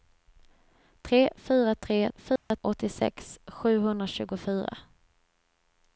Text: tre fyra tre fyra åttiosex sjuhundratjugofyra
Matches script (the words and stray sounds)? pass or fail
fail